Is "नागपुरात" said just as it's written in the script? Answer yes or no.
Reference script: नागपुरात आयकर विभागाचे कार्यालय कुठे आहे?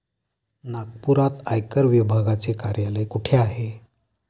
yes